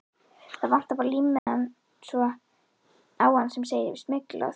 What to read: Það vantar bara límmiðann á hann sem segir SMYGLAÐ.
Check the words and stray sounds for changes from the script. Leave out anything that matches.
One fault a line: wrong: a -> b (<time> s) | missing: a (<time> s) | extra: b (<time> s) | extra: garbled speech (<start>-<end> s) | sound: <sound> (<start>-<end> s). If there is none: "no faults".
sound: dropout (1.4-1.5 s)